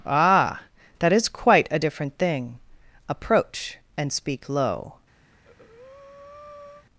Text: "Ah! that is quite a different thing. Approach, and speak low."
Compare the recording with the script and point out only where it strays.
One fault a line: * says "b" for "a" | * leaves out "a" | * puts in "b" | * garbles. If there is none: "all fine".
all fine